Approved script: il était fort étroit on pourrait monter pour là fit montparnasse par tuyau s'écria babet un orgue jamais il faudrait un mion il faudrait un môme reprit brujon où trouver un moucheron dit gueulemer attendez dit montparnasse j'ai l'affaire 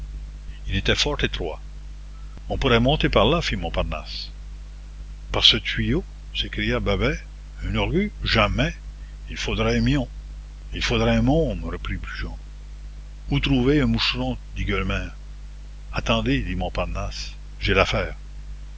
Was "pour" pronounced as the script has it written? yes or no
no